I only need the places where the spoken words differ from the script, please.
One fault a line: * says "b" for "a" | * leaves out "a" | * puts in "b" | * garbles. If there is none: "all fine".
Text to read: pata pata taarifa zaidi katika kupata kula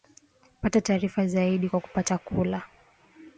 * leaves out "pata"
* says "kwa" for "katika"